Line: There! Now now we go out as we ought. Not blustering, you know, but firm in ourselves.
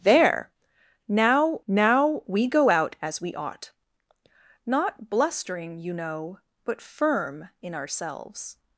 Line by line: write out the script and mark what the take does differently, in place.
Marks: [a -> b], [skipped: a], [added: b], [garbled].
There! Now now we go out as we ought. Not blustering, you know, but firm in ourselves.